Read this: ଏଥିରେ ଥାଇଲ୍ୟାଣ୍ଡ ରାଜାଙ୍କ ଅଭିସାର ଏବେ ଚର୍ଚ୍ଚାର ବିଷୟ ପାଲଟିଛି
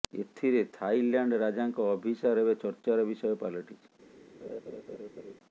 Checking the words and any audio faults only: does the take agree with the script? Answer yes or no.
no